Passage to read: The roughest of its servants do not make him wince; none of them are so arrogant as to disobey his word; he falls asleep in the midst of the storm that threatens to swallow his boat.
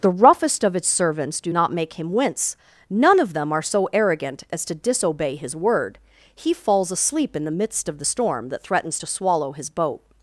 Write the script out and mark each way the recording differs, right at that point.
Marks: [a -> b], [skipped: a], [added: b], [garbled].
The roughest of its servants do not make him wince; none of them are so arrogant as to disobey his word; he falls asleep in the midst of the storm that threatens to swallow his boat.